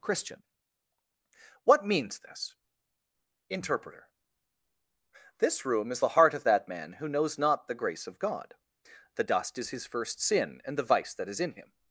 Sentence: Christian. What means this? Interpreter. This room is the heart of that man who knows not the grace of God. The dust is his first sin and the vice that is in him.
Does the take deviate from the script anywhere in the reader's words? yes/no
no